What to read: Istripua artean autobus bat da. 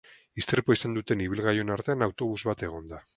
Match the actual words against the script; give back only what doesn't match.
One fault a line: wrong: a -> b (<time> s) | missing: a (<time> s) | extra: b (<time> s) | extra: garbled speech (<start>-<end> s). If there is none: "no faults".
extra: izan duten ibilgailuen (0.8 s)
extra: egon (2.7 s)